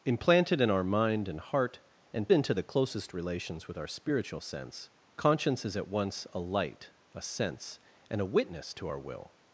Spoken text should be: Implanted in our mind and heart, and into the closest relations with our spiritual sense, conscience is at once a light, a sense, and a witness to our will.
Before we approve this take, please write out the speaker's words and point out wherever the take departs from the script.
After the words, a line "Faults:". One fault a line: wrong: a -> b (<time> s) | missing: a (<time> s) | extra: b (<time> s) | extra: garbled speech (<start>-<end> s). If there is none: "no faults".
Implanted in our mind and heart, and into the closest relations with our spiritual sense, conscience is at once a light, a sense, and a witness to our will.
Faults:
no faults